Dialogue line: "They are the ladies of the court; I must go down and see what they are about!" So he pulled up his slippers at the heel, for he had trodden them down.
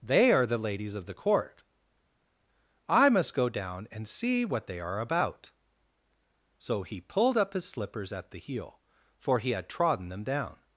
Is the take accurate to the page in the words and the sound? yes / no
yes